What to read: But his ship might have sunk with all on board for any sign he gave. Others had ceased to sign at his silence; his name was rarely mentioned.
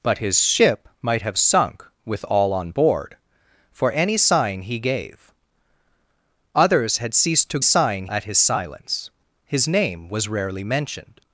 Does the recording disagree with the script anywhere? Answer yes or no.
no